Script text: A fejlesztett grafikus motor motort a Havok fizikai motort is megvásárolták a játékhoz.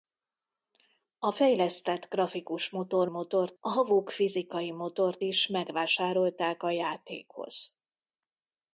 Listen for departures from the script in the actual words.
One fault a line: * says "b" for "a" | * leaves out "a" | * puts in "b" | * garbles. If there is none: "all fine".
all fine